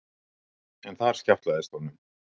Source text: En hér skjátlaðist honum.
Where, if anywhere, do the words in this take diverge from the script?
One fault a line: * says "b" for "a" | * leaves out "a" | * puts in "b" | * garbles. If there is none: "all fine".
* says "þar" for "hér"